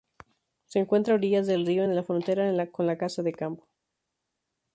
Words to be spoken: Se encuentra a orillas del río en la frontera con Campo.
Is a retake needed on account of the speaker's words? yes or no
yes